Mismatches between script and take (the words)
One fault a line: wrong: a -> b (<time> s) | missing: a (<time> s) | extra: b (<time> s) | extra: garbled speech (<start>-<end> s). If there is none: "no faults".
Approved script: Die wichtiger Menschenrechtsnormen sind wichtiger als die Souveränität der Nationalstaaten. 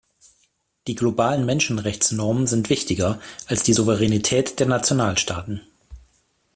wrong: wichtiger -> globalen (0.9 s)